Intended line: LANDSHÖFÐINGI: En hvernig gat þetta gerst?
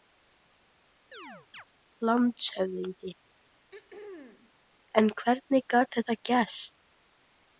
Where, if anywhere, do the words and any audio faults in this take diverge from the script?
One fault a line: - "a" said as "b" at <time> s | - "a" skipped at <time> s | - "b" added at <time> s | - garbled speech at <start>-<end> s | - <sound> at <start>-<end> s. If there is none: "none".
- chirp at 1.1-1.6 s
- throat clearing at 3.7-4.5 s